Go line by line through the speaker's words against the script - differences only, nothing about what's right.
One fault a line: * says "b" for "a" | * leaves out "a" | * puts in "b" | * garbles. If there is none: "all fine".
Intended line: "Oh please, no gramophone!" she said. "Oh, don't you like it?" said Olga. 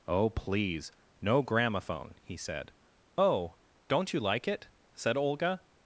* says "he" for "she"